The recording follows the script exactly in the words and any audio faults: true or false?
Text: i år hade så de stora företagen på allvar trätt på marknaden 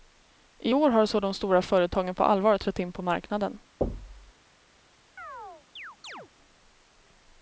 false